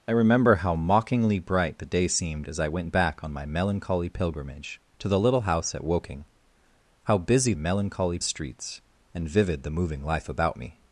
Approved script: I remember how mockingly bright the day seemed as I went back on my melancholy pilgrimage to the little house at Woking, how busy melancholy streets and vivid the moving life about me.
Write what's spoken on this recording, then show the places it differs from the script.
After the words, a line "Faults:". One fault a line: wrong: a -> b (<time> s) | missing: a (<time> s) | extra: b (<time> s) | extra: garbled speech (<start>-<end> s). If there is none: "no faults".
I remember how mockingly bright the day seemed as I went back on my melancholy pilgrimage to the little house at Woking, how busy melancholy streets and vivid the moving life about me.
Faults:
no faults